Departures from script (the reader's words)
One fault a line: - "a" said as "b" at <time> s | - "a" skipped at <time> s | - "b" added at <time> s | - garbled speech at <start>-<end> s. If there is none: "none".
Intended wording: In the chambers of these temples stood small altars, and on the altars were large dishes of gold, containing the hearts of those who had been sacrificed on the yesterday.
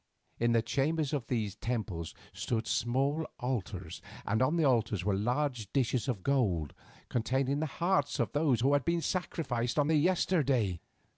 none